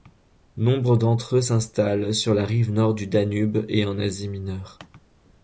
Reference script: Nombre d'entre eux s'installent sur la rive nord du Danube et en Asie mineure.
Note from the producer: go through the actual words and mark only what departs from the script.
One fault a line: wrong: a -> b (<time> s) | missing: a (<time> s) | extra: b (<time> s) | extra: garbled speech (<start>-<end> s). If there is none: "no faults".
no faults